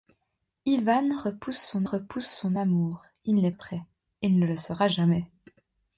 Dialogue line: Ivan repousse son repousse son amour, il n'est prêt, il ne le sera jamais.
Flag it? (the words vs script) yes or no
no